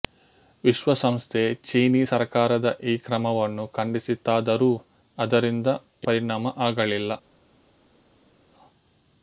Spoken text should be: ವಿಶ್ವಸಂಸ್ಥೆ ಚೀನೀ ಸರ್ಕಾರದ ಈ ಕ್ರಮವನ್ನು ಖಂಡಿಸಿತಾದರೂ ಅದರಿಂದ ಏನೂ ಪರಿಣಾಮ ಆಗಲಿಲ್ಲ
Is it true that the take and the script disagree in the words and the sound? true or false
true